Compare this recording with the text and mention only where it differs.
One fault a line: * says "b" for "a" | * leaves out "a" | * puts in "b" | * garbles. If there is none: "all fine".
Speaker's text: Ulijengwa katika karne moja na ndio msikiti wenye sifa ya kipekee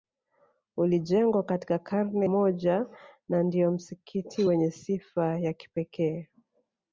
all fine